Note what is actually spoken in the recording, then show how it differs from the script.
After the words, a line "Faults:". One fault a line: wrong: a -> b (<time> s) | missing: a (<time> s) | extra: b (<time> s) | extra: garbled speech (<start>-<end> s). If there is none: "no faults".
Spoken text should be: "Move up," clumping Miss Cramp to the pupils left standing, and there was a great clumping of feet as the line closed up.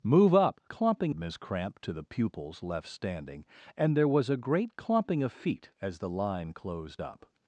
"Move up," clumping Miss Cramp to the pupils left standing, and there was a great clumping of feet as the line closed up.
Faults:
no faults